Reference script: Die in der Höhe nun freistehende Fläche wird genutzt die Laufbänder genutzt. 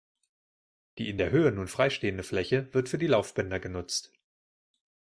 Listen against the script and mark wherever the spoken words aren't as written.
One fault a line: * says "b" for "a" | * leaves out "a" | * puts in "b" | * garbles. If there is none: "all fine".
* says "für" for "genutzt"